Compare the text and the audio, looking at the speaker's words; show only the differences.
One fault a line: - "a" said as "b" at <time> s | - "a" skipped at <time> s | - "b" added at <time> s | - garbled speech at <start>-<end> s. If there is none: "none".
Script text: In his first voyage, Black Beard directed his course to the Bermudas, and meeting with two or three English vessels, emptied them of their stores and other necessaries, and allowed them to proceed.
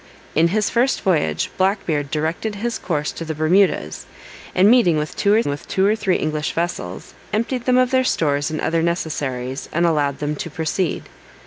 - "with two or" added at 5.5 s